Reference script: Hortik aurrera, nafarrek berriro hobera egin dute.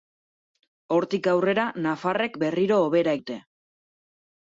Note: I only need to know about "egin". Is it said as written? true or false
false